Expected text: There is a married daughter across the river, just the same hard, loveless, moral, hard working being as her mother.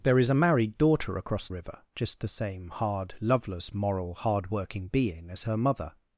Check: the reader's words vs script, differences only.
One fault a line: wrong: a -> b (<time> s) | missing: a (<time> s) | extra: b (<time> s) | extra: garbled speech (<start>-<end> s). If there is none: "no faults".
missing: the (1.5 s)